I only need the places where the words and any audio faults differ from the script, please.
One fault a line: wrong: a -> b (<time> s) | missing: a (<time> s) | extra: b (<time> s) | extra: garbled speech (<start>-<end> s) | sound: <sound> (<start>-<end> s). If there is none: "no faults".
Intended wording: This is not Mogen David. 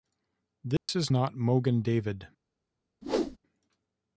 sound: dropout (0.8-0.9 s)
sound: whoosh (3.0-3.4 s)